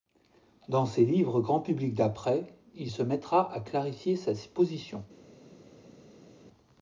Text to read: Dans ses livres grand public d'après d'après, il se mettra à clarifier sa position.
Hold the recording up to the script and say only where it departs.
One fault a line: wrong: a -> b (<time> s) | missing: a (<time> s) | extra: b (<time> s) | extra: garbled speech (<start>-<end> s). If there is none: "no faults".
missing: d'après (2.5 s)